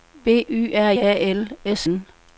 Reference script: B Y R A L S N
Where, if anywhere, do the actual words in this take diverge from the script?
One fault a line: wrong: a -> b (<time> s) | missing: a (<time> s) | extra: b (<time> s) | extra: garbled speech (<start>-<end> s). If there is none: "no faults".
no faults